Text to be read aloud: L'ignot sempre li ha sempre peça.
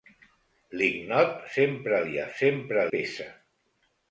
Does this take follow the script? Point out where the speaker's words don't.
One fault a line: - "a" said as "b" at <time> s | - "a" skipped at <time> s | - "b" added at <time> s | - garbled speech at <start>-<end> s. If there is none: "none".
none